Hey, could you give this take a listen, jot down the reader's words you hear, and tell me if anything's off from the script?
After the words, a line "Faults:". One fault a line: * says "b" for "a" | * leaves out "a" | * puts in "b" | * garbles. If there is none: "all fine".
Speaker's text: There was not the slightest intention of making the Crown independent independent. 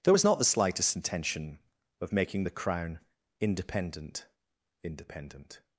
There was not the slightest intention of making the Crown independent independent.
Faults:
all fine